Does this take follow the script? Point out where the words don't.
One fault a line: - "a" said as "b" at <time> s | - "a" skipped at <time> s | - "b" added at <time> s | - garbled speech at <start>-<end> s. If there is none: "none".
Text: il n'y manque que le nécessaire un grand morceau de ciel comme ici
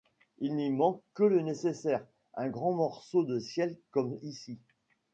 none